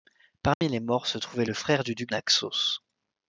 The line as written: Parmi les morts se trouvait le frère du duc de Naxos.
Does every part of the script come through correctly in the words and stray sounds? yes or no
no